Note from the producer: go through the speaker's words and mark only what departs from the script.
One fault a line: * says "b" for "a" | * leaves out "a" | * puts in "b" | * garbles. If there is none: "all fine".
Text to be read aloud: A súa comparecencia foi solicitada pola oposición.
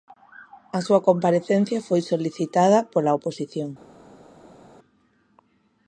all fine